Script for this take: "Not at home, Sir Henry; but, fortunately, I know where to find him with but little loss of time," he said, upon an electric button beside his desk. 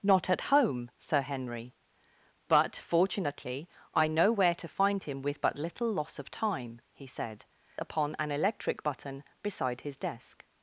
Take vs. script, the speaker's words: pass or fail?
pass